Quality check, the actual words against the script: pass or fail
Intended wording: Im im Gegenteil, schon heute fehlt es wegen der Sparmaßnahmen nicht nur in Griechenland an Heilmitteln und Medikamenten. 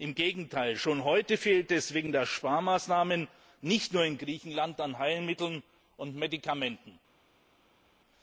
fail